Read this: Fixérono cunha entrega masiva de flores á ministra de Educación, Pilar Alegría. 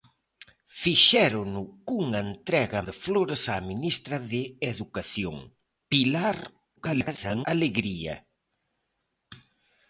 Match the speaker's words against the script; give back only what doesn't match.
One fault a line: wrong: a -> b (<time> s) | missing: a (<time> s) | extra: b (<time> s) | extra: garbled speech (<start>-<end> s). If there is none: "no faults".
missing: masiva (2.8 s)
extra: garbled speech (6.8-7.5 s)